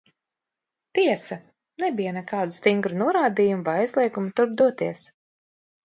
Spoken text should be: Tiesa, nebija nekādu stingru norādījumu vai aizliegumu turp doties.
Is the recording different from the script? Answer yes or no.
no